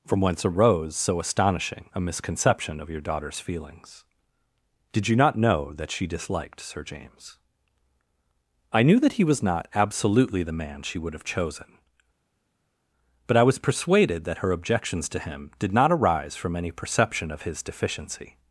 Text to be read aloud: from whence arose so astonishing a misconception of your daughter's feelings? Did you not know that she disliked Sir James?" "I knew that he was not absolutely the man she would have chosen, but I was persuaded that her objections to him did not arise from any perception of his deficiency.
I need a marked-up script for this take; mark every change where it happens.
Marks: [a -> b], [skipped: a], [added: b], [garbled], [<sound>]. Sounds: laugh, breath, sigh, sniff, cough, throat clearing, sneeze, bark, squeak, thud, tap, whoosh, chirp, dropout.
from whence arose so astonishing a misconception of your daughter's feelings? Did you not know that she disliked Sir James?" "I knew that he was not absolutely the man she would have chosen, but I was persuaded that her objections to him did not arise from any perception of his deficiency.